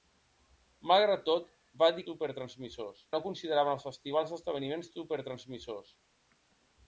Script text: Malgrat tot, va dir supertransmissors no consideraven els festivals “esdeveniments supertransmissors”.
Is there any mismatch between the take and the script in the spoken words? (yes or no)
no